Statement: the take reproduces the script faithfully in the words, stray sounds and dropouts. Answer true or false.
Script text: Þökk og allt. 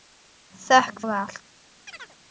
false